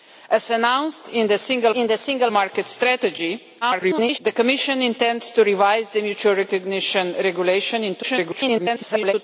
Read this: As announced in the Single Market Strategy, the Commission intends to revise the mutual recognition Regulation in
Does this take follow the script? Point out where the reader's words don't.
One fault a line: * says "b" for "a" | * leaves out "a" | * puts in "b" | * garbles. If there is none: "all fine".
* puts in "in the Single"
* garbles
* garbles